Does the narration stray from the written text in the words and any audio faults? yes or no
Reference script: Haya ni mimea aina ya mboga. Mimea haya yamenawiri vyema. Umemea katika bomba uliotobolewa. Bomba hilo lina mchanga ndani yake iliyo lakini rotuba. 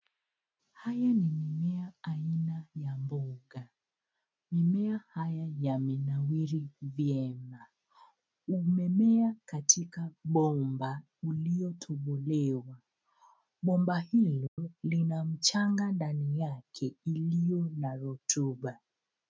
yes